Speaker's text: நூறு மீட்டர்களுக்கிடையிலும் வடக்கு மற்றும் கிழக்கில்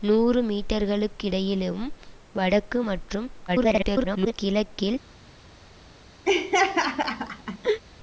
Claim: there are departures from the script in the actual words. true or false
true